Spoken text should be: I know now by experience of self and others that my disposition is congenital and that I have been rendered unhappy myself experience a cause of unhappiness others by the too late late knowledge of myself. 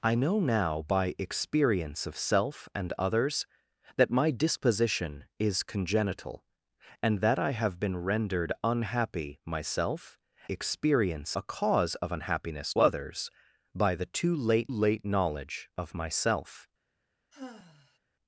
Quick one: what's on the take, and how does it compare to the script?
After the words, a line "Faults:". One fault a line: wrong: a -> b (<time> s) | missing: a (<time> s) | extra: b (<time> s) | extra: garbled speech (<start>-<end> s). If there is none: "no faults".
I know now by experience of self and others that my disposition is congenital and that I have been rendered unhappy myself experience a cause of unhappiness others by the too late late knowledge of myself.
Faults:
no faults